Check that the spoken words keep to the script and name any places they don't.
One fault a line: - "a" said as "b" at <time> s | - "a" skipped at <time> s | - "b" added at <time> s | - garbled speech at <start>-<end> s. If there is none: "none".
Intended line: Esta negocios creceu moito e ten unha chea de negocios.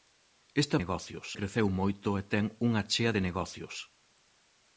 none